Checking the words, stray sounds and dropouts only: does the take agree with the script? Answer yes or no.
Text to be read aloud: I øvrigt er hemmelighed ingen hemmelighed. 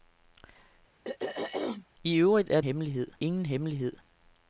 no